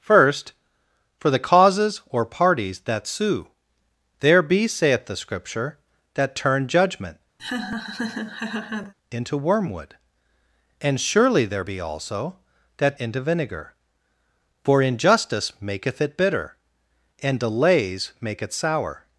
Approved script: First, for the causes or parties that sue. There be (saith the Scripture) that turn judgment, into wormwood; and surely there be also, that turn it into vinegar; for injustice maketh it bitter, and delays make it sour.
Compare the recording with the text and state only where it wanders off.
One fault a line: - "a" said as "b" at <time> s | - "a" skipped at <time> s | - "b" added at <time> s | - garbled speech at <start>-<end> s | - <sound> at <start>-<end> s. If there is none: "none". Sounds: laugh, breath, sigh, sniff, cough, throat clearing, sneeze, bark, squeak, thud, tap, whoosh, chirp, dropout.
- laugh at 7.4-8.9 s
- "turn it" skipped at 13.0 s